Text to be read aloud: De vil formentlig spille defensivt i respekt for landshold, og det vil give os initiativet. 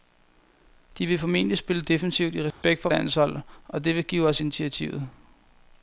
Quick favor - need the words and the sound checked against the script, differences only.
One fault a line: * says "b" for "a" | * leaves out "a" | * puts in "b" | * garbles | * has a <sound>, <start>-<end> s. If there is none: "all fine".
* has a dropout, 2.5-2.6 s